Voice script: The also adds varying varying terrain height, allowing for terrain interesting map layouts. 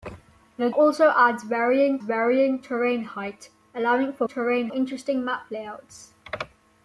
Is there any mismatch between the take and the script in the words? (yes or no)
no